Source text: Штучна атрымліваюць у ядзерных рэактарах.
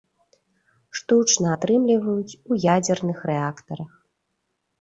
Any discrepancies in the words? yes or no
no